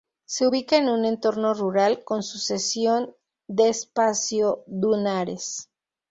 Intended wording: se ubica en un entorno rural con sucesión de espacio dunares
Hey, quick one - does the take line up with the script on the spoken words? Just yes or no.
yes